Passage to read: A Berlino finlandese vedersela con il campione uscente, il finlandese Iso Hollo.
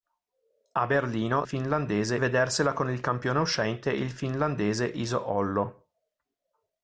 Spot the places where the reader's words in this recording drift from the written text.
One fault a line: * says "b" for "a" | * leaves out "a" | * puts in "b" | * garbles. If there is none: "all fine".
all fine